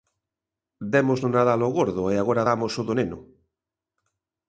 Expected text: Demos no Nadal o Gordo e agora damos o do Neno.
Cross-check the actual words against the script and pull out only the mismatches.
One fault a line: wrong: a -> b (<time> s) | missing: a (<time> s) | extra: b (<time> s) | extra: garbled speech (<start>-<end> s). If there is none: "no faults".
no faults